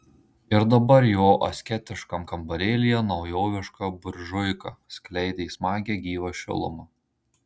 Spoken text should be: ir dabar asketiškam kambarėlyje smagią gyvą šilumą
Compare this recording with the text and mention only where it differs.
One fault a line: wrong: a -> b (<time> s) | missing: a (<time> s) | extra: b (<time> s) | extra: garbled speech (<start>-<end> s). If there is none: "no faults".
extra: jo (1.1 s)
extra: naujoviška buržuika skleidė (3.1 s)